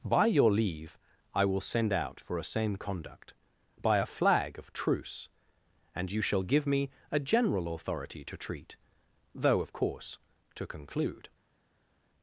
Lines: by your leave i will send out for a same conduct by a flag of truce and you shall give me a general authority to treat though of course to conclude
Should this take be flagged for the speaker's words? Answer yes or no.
no